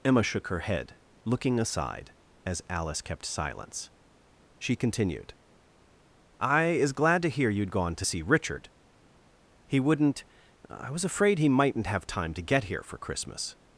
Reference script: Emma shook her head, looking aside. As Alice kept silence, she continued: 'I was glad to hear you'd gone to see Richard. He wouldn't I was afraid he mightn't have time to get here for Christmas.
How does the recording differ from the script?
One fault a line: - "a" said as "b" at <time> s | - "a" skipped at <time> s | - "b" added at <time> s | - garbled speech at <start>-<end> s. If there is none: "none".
- "was" said as "is" at 6.6 s